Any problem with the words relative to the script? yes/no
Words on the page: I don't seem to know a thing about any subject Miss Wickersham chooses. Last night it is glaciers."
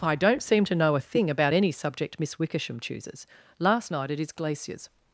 no